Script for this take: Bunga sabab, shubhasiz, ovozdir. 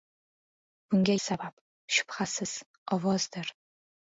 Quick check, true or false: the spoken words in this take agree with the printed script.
true